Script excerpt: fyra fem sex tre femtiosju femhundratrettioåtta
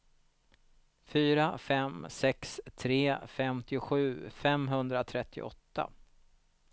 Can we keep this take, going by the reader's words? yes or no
yes